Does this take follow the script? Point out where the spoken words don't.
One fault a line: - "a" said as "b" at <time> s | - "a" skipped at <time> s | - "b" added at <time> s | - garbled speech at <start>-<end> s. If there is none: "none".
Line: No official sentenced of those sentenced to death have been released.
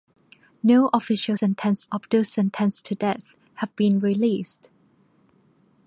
none